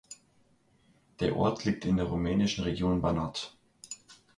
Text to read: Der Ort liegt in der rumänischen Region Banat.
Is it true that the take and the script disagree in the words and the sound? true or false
false